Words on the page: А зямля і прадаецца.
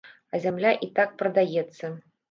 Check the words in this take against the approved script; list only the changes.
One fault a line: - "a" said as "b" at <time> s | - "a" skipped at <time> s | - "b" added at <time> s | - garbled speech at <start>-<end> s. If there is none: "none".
- "так" added at 1.0 s